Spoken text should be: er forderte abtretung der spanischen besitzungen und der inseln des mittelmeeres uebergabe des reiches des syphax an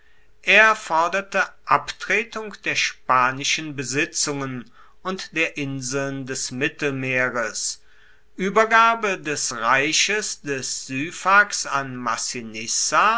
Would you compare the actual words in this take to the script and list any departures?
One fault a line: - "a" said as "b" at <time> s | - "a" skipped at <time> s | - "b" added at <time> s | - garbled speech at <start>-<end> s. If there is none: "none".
none